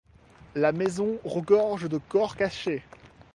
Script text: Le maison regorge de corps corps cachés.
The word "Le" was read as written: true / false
false